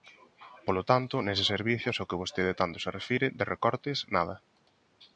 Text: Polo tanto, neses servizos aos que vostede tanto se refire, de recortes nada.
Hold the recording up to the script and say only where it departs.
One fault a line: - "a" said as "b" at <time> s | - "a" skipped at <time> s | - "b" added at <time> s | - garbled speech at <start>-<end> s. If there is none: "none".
none